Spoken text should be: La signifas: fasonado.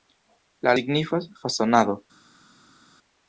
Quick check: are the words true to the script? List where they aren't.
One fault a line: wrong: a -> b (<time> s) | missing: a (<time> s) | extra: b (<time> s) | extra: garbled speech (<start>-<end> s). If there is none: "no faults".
no faults